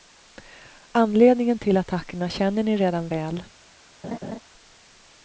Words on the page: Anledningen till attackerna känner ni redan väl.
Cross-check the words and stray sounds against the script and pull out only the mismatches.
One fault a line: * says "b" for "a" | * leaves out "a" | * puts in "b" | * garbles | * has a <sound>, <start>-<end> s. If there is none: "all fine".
* has a laugh, 4.0-4.4 s